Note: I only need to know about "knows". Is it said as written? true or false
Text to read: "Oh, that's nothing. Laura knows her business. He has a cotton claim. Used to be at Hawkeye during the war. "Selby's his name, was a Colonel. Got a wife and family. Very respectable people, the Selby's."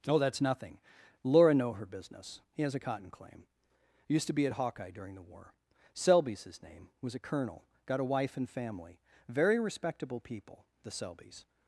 false